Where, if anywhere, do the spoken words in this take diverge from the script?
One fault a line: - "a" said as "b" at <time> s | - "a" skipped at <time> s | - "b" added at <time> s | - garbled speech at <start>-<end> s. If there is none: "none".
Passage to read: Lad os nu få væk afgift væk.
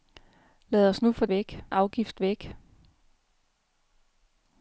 none